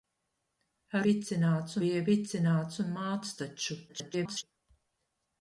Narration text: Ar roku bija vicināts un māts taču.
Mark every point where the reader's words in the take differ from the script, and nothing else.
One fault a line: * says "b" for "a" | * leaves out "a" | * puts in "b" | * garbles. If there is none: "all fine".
* says "vicināts" for "roku"
* garbles